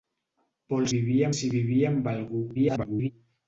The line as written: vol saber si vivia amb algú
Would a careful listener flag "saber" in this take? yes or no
yes